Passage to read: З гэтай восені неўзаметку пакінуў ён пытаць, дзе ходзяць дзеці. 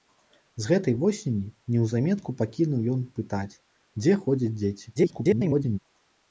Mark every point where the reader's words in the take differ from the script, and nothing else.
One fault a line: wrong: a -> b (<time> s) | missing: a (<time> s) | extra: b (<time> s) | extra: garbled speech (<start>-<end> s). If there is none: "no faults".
extra: garbled speech (5.0-5.8 s)